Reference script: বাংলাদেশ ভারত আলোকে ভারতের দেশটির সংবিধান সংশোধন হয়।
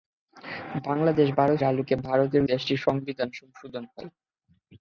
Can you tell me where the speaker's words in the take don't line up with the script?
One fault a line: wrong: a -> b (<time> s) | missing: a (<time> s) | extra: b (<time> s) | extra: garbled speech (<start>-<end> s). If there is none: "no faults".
no faults